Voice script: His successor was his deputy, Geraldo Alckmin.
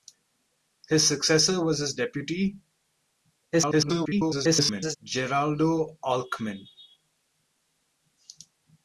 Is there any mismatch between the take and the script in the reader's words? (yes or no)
yes